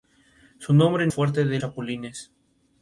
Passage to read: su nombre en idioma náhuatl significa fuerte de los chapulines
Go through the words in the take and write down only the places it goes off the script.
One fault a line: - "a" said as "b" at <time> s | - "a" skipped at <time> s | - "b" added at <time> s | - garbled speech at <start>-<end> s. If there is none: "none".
- "idioma náhuatl significa" skipped at 1.1 s
- "los" skipped at 1.6 s